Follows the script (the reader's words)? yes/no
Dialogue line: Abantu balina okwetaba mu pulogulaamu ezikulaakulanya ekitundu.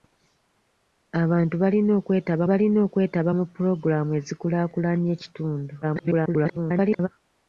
no